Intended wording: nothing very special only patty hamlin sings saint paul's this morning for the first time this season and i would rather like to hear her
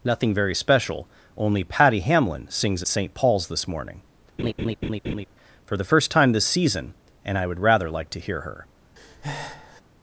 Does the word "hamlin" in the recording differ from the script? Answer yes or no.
no